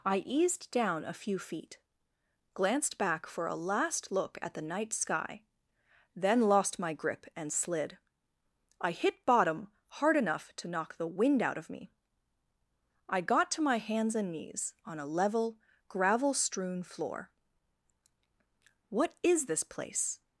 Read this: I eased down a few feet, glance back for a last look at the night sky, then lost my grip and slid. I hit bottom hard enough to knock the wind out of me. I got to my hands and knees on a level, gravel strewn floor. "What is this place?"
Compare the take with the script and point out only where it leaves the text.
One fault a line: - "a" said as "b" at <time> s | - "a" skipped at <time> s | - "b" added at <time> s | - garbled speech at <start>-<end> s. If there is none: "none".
- "glance" said as "glanced" at 2.5 s